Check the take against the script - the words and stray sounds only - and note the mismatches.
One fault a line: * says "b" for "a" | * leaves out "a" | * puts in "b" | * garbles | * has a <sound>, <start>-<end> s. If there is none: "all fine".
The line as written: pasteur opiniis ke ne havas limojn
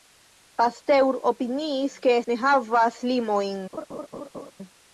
* has a laugh, 3.7-4.5 s